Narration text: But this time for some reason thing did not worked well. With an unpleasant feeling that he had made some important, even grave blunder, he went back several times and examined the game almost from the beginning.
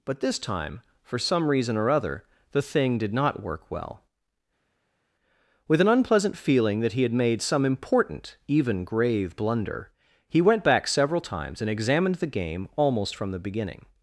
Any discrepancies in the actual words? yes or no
yes